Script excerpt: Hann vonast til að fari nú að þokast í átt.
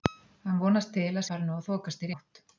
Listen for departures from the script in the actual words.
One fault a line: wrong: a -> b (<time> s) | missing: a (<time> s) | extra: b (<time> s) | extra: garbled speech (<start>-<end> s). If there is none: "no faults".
no faults